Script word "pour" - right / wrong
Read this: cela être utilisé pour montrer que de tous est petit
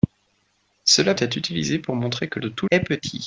right